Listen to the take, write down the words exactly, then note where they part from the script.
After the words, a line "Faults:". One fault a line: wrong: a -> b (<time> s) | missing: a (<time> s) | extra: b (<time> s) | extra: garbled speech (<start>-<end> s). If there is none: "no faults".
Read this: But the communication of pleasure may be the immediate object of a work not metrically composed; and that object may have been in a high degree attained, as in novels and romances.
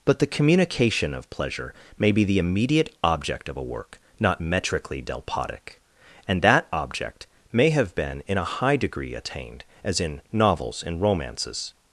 But the communication of pleasure may be the immediate object of a work not metrically delpotic; and that object may have been in a high degree attained, as in novels and romances.
Faults:
wrong: composed -> delpotic (5.0 s)